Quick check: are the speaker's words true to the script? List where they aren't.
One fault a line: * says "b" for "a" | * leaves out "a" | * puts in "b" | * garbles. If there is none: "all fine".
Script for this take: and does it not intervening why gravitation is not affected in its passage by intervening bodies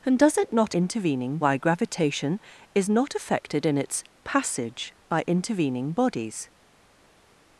all fine